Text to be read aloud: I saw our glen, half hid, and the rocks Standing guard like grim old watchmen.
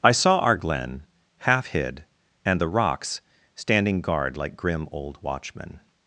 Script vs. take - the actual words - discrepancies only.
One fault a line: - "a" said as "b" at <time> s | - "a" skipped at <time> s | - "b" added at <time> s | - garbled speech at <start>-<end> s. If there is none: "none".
none